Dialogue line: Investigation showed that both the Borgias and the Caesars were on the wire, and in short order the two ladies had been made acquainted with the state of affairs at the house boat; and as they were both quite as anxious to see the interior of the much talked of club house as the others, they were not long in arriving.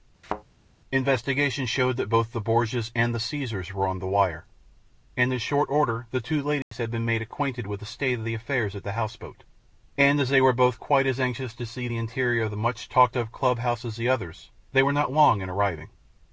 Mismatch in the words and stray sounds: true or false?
true